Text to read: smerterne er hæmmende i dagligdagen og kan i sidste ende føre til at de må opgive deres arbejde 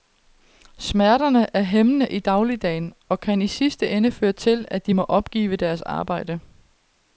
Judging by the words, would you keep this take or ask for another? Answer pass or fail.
pass